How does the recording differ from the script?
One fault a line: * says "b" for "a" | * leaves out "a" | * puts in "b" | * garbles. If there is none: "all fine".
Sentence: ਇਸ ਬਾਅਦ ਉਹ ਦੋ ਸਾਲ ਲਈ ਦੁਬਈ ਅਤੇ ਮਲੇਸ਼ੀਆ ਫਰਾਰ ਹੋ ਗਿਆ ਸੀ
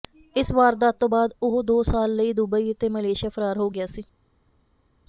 * puts in "ਵਾਰਦਾਤ ਤੋਂ"